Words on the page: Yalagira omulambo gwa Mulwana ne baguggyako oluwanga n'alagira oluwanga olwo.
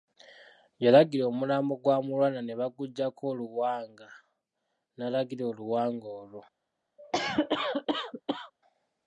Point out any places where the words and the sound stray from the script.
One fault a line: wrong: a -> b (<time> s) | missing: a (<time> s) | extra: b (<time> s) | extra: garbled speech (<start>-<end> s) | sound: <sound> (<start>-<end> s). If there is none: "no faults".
sound: cough (7.0-8.5 s)